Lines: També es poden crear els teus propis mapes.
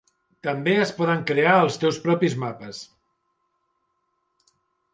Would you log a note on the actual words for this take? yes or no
no